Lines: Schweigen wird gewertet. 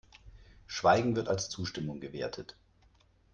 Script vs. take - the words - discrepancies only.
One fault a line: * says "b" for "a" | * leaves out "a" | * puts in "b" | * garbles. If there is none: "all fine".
* puts in "als Zustimmung"